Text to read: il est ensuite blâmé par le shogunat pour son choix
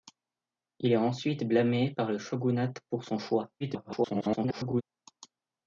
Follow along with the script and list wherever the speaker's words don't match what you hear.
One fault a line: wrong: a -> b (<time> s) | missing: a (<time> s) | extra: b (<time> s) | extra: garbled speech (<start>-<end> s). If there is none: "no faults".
extra: garbled speech (3.6-4.8 s)